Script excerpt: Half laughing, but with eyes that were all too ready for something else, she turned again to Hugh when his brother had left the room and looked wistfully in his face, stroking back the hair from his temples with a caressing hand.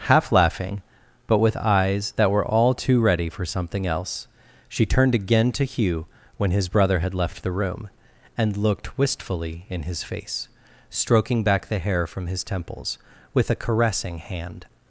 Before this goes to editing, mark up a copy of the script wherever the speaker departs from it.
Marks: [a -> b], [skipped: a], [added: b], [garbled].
Half laughing, but with eyes that were all too ready for something else, she turned again to Hugh when his brother had left the room and looked wistfully in his face, stroking back the hair from his temples with a caressing hand.